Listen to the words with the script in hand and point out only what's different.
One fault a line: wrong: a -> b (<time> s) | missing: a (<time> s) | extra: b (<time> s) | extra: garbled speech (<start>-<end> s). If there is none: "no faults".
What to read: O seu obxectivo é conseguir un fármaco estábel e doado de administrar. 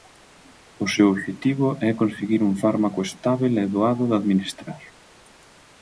no faults